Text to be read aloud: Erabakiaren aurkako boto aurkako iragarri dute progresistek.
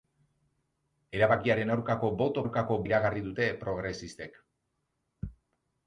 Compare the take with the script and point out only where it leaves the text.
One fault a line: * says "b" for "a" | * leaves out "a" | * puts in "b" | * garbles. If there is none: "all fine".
all fine